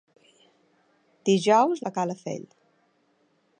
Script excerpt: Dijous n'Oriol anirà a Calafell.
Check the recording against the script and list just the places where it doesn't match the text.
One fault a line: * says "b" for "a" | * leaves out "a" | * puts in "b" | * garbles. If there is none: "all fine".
* leaves out "n'Oriol anirà"